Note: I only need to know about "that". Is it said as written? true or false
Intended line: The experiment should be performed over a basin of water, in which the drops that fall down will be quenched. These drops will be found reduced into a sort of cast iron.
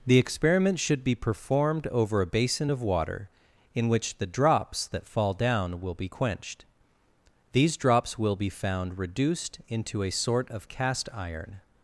true